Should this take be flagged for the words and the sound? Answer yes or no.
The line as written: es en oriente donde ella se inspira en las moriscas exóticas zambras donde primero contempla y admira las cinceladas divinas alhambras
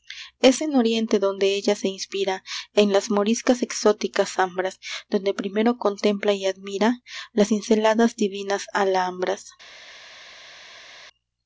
no